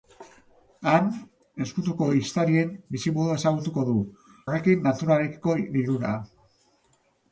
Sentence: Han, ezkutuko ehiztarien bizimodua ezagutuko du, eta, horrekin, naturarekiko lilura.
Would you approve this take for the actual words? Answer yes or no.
no